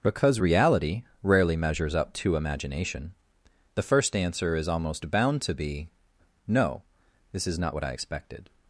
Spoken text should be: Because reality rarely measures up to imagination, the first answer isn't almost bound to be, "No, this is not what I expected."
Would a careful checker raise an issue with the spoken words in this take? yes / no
yes